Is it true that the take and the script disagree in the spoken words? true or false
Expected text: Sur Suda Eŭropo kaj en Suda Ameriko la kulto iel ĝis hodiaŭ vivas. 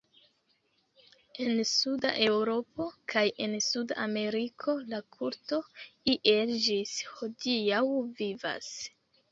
true